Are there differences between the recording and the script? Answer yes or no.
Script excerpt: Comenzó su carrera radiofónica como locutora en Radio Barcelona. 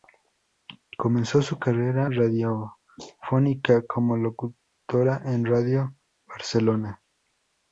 no